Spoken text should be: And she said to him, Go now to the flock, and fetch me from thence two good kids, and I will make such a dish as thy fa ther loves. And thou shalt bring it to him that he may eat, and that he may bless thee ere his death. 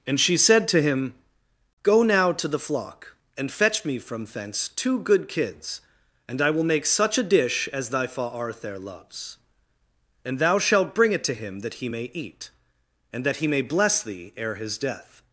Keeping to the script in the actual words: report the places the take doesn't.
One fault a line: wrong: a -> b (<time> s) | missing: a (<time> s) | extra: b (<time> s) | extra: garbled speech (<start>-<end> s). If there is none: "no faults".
wrong: ther -> arthur (8.2 s)